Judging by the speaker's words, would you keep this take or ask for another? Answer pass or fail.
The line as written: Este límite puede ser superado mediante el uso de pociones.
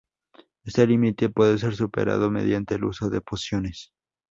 pass